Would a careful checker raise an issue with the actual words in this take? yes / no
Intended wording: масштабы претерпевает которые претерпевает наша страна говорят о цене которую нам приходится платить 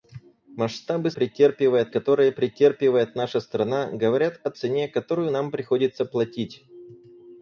no